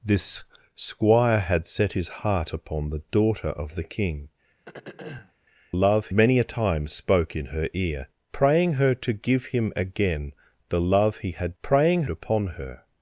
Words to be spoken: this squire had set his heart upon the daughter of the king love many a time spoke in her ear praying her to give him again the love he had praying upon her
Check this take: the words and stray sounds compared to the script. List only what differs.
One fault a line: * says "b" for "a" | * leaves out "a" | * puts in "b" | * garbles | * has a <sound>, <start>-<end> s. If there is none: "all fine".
* has a throat clearing, 4.6-5.3 s